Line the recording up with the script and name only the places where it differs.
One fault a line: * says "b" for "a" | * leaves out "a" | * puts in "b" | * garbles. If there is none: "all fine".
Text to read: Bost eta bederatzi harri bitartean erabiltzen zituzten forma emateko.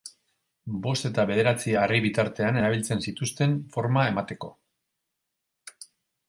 all fine